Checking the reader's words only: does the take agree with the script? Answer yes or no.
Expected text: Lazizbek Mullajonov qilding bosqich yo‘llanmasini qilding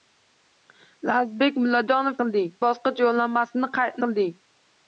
yes